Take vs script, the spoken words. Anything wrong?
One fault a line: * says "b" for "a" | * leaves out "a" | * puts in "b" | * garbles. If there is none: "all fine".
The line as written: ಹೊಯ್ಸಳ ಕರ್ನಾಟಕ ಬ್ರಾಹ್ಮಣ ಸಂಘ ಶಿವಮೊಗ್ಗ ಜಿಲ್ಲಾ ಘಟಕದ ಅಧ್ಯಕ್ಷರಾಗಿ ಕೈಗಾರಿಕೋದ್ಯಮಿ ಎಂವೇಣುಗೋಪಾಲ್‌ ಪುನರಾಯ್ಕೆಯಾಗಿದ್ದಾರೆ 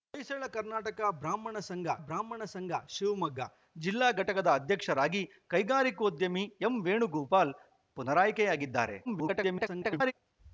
* puts in "ಬ್ರಾಹ್ಮಣ ಸಂಘ"
* garbles